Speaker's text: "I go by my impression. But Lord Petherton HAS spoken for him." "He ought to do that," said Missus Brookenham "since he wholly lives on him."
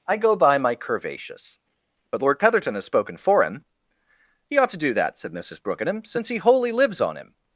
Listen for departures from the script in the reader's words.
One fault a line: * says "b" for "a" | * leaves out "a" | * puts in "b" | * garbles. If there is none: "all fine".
* says "curvaceous" for "impression"